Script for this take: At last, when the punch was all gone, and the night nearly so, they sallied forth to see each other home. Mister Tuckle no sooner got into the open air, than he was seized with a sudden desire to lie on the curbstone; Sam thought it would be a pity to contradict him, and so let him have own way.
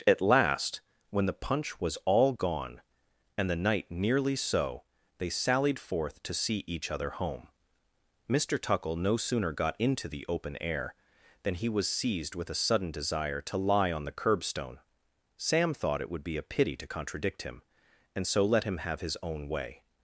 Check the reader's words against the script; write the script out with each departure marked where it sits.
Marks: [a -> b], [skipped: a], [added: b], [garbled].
At last, when the punch was all gone, and the night nearly so, they sallied forth to see each other home. Mister Tuckle no sooner got into the open air, than he was seized with a sudden desire to lie on the curbstone; Sam thought it would be a pity to contradict him, and so let him have [added: his] own way.